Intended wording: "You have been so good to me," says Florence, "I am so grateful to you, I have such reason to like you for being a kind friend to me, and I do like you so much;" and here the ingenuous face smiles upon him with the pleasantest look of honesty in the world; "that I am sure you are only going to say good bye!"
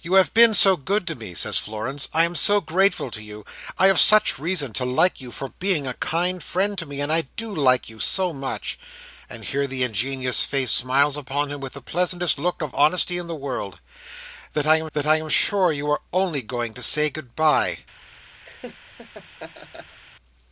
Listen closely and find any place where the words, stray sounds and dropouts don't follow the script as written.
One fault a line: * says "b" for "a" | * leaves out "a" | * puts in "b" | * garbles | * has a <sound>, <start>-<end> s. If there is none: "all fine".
* puts in "that I am"
* has a laugh, 18.4-20.0 s